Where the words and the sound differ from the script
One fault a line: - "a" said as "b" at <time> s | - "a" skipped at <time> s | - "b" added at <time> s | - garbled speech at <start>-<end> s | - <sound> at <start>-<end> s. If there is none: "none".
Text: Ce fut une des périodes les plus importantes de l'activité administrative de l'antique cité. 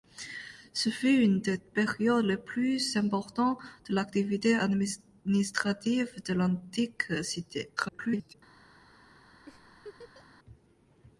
- garbled speech at 7.8-8.3 s
- laugh at 9.5-10.3 s